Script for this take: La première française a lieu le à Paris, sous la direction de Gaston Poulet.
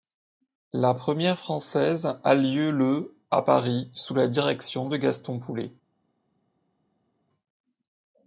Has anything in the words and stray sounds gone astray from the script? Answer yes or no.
no